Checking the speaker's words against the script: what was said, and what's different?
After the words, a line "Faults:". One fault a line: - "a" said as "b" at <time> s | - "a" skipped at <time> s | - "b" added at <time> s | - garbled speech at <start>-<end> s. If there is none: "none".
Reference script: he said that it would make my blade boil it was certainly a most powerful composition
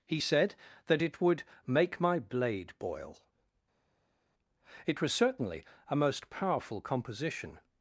he said that it would make my blade boil it was certainly a most powerful composition
Faults:
none